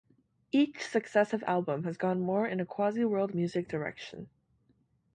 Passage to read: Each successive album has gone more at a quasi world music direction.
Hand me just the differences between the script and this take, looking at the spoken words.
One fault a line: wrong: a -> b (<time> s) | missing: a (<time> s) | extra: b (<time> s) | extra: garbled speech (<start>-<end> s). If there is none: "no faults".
wrong: at -> in (2.5 s)